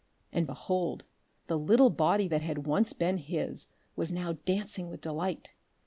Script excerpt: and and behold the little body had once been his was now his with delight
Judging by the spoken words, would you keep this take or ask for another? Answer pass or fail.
fail